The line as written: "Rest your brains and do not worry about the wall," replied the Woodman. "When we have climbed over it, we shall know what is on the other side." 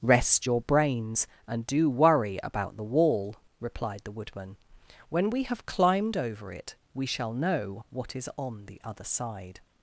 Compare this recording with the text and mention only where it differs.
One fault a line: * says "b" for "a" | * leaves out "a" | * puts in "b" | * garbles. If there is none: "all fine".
* leaves out "not"